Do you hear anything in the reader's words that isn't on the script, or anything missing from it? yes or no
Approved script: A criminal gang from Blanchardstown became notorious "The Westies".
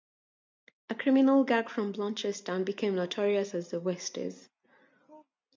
yes